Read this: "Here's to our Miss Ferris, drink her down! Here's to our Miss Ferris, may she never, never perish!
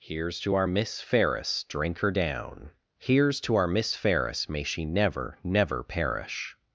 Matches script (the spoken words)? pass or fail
pass